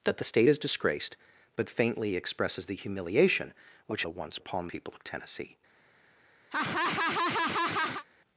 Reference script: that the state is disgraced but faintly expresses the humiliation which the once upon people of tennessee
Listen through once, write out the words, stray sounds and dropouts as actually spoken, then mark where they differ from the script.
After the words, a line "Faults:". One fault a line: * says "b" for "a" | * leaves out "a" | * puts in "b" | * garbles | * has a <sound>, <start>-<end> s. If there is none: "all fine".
that the state is disgraced but faintly expresses the humiliation which the once upon people of tennessee
Faults:
* has a laugh, 6.5-8.0 s